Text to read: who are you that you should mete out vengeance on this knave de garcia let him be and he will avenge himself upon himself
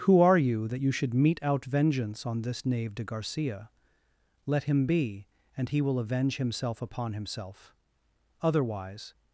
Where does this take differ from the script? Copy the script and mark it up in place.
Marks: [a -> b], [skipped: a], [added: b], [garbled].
who are you that you should mete out vengeance on this knave de garcia let him be and he will avenge himself upon himself [added: otherwise]